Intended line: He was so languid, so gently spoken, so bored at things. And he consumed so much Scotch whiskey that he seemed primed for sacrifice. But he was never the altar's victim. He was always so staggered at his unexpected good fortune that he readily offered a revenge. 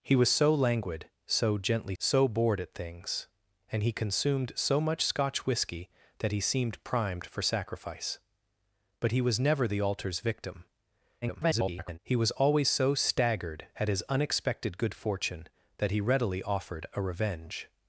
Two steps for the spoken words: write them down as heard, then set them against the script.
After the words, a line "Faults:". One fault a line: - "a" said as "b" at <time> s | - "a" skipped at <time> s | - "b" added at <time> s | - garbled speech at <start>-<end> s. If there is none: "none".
He was so languid, so gently so bored at things. And he consumed so much Scotch whiskey that he seemed primed for sacrifice. But he was never the altar's victim. [garbled] He was always so staggered at his unexpected good fortune that he readily offered a revenge.
Faults:
- "spoken" skipped at 1.9 s
- garbled speech at 11.2-12.0 s